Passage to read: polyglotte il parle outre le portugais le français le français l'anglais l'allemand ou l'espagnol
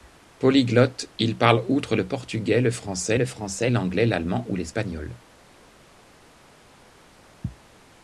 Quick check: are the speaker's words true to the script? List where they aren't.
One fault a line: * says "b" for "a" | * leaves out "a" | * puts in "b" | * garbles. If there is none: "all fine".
all fine